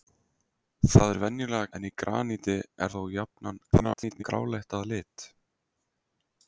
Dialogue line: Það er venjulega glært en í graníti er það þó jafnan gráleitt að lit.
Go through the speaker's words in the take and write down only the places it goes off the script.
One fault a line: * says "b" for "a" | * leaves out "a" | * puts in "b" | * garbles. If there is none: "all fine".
* leaves out "glært"
* leaves out "það"
* garbles